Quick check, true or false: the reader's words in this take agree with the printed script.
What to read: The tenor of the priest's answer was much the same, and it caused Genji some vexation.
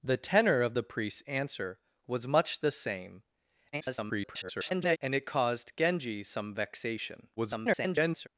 false